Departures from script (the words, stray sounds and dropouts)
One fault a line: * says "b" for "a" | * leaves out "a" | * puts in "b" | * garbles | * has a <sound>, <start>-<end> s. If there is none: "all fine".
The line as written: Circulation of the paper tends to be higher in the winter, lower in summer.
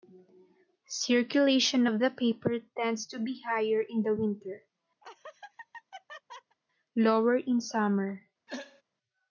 * has a laugh, 5.0-6.6 s
* has a throat clearing, 8.5-8.8 s